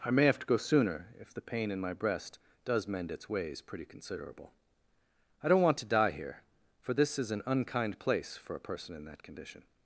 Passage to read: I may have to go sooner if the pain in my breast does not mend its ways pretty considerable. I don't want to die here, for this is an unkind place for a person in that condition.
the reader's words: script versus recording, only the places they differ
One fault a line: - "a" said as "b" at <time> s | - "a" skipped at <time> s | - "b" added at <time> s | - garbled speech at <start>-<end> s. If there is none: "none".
- "not" skipped at 2.9 s